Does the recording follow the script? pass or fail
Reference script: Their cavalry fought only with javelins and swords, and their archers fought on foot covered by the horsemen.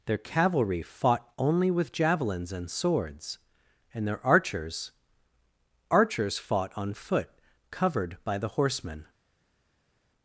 fail